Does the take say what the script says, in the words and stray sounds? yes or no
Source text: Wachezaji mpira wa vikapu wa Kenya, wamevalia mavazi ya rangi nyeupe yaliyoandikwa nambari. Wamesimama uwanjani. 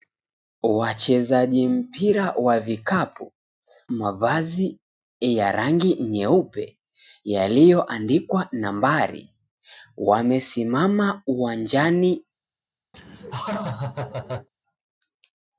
no